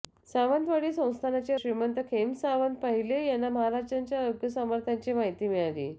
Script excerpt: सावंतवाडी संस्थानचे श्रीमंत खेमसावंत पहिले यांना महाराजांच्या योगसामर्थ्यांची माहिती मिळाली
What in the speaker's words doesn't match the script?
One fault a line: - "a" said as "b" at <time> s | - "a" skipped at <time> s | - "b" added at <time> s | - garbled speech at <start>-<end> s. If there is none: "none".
none